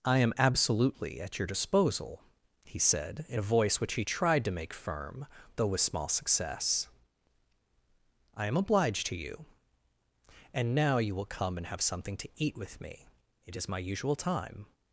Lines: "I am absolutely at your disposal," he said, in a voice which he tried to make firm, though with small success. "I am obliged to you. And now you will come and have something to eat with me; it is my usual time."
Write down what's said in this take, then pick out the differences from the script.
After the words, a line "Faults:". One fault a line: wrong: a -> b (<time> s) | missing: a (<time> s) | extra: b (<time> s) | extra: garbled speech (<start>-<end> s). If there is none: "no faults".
"I am absolutely at your disposal," he said, in a voice which he tried to make firm, though with small success. "I am obliged to you. And now you will come and have something to eat with me; it is my usual time."
Faults:
no faults